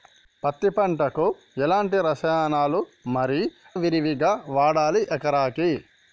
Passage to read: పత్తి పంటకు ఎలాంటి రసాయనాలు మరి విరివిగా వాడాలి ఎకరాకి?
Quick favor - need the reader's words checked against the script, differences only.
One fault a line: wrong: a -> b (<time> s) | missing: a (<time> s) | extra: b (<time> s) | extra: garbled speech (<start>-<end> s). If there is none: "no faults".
no faults